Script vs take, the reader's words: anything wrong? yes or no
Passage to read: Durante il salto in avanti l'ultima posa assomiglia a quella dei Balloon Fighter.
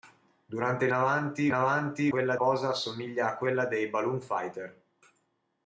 yes